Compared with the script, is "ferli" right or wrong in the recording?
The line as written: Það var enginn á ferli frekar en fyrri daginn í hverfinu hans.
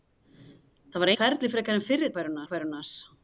right